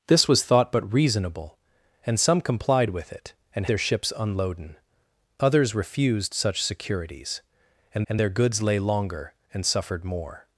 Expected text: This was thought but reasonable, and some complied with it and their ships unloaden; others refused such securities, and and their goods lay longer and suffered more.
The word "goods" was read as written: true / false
true